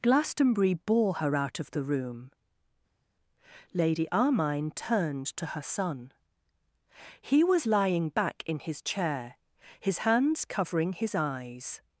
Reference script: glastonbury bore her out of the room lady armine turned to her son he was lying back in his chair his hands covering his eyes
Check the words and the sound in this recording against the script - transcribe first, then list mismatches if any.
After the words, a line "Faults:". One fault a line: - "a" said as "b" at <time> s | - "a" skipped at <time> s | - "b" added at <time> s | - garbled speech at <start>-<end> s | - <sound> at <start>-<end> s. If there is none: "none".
glastonbury bore her out of the room lady armine turned to her son he was lying back in his chair his hands covering his eyes
Faults:
none